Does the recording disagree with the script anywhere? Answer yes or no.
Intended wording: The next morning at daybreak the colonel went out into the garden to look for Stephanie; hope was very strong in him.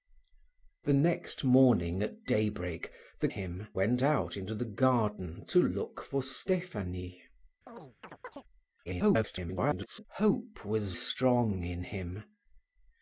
yes